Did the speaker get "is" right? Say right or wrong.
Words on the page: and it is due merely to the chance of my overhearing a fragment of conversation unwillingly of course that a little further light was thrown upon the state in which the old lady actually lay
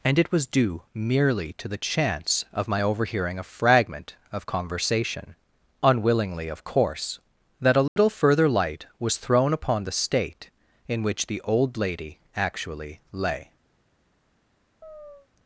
wrong